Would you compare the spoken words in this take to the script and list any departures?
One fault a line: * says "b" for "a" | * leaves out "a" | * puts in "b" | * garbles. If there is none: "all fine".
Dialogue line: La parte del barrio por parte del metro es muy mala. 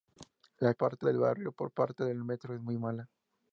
all fine